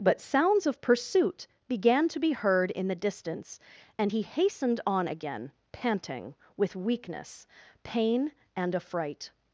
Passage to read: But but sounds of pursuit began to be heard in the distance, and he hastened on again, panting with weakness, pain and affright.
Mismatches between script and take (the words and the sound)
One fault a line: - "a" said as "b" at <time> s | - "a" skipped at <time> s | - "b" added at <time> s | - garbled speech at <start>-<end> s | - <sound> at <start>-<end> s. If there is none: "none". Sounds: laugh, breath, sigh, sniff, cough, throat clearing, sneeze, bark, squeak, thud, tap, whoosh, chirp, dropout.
- "but" skipped at 0.2 s